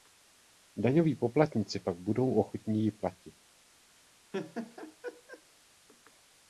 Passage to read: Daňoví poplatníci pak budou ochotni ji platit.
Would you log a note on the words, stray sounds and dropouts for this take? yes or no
yes